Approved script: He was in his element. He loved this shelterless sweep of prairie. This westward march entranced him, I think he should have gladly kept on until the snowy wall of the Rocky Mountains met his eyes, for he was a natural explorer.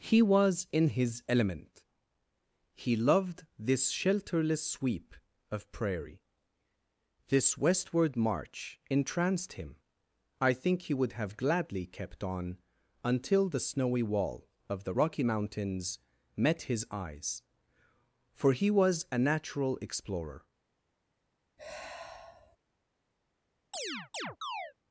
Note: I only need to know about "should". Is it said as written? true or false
false